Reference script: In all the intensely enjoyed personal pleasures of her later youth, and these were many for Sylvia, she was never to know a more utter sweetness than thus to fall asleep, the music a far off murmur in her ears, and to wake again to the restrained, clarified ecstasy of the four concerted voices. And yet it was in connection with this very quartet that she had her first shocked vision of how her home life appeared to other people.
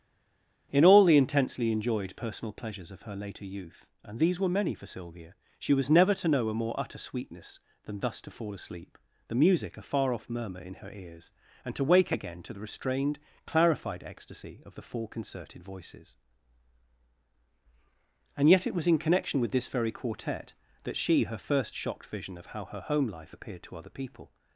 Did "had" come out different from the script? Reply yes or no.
yes